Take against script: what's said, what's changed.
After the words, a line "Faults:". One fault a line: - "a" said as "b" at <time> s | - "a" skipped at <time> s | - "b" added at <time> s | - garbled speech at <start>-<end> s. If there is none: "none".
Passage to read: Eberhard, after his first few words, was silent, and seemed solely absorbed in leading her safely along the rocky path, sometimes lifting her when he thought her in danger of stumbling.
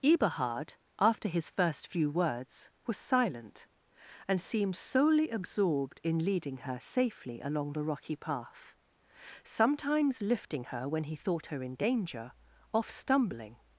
Eberhard, after his first few words, was silent, and seemed solely absorbed in leading her safely along the rocky path, sometimes lifting her when he thought her in danger off stumbling.
Faults:
- "of" said as "off" at 12.7 s